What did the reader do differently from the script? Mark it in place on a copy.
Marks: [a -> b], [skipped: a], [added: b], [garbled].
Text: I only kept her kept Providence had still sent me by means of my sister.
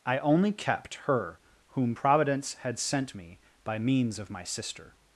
I only kept her [kept -> whom] Providence had [skipped: still] sent me by means of my sister.